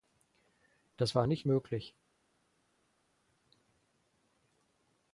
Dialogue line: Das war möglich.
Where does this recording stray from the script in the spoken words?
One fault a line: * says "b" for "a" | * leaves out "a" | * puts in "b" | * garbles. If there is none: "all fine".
* puts in "nicht"